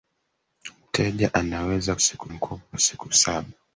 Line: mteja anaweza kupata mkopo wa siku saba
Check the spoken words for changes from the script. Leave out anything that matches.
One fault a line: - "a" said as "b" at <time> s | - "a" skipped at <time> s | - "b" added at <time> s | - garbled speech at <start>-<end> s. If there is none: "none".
- "kupata" said as "siku" at 2.0 s